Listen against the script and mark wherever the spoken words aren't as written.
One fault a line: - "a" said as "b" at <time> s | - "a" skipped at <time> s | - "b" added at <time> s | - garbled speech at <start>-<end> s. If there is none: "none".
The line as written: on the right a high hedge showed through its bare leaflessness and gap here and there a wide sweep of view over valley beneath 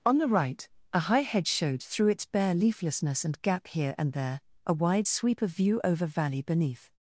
none